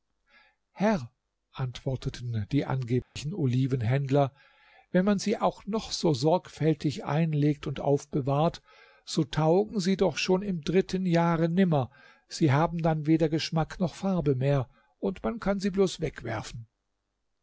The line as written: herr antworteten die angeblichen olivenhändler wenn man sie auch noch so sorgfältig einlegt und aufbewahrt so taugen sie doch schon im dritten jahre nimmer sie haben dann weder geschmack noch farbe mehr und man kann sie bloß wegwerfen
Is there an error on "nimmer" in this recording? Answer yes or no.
no